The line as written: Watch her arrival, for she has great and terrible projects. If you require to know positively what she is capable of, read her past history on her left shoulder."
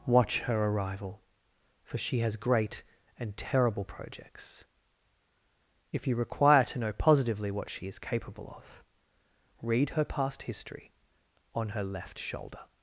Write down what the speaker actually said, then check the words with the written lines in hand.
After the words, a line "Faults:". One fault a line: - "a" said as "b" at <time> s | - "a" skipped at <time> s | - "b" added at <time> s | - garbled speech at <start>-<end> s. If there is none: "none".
Watch her arrival, for she has great and terrible projects. If you require to know positively what she is capable of, read her past history on her left shoulder."
Faults:
none